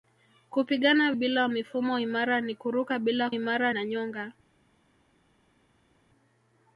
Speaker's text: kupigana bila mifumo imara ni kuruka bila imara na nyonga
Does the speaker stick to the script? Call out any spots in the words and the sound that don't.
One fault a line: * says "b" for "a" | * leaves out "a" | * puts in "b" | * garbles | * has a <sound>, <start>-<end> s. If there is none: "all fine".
all fine